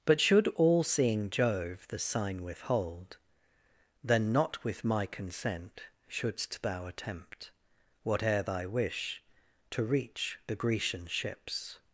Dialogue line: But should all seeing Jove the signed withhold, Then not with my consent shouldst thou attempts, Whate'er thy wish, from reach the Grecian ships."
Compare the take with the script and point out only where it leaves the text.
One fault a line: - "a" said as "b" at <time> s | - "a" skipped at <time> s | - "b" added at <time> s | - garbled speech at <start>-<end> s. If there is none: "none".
- "signed" said as "sign" at 2.0 s
- "attempts" said as "attempt" at 6.9 s
- "from" said as "to" at 9.7 s